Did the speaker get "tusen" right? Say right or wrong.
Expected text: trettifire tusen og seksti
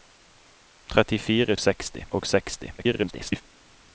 wrong